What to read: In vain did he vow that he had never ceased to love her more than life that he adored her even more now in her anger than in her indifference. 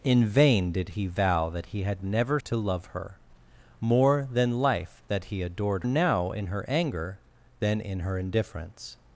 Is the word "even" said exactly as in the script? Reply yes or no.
no